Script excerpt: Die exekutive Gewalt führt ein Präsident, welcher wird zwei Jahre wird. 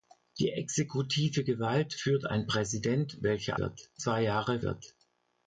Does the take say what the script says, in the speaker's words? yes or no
yes